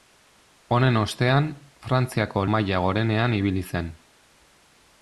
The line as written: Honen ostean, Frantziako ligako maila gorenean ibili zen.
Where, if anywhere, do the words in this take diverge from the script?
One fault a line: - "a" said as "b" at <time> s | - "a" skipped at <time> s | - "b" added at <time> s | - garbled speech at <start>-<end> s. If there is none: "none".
- "ligako" skipped at 2.5 s